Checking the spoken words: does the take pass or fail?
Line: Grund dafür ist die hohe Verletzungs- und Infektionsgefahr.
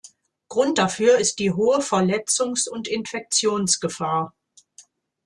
pass